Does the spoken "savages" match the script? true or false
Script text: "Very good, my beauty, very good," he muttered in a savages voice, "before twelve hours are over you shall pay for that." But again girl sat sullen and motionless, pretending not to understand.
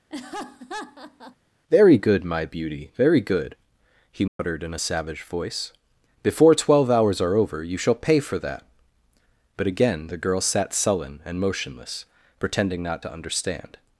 false